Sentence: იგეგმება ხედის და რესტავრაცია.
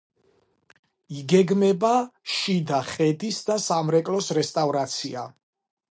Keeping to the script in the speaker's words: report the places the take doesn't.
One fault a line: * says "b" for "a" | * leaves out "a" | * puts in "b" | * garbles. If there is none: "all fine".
* puts in "შიდა"
* puts in "სამრეკლოს"